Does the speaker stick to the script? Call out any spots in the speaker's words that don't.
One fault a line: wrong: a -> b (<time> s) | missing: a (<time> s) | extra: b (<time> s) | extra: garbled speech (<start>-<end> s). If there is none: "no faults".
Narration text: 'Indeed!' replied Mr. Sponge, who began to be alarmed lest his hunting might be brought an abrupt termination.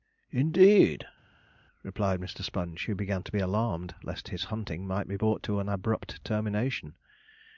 extra: to (5.4 s)